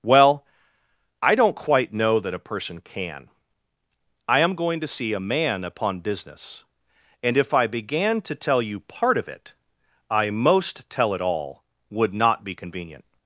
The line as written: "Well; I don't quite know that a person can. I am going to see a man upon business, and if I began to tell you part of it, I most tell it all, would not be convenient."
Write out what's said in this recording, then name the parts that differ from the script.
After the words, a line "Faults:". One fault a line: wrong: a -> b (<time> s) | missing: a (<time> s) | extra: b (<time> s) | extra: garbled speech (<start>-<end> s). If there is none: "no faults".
"Well; I don't quite know that a person can. I am going to see a man upon business, and if I began to tell you part of it, I most tell it all, would not be convenient."
Faults:
no faults